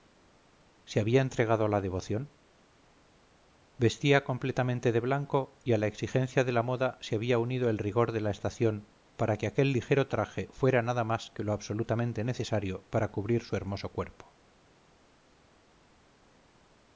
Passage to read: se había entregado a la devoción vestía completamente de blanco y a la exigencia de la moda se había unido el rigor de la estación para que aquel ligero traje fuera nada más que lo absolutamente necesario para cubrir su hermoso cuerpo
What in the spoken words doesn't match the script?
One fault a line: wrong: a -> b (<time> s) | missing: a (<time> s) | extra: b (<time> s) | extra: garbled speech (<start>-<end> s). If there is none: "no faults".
no faults